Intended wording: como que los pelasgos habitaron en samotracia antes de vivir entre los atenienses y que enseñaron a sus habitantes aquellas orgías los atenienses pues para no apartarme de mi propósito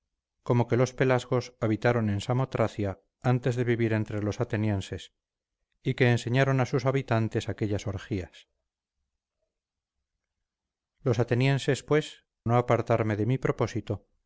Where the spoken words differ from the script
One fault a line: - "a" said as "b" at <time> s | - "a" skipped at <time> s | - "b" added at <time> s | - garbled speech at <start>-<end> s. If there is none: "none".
- "para" skipped at 12.2 s